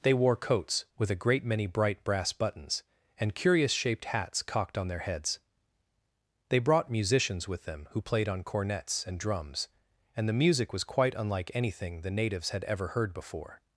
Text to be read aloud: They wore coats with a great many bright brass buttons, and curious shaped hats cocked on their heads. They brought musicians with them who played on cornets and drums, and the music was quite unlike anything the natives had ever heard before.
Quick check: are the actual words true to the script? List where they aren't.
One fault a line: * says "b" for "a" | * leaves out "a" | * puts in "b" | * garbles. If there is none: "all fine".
all fine